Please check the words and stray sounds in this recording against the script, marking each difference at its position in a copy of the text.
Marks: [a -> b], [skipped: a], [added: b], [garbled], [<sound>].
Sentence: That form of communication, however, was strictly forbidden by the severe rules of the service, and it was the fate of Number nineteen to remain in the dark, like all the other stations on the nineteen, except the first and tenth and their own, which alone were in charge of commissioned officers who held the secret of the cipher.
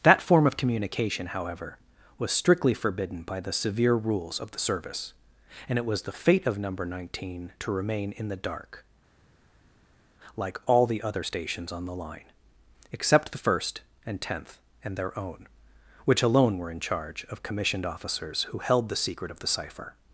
That form of communication, however, was strictly forbidden by the severe rules of the service, and it was the fate of Number nineteen to remain in the dark, like all the other stations on the [nineteen, -> line] except the first and tenth and their own, which alone were in charge of commissioned officers who held the secret of the cipher.